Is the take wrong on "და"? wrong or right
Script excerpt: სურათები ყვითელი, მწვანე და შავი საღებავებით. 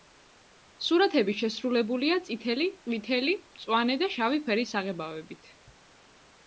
right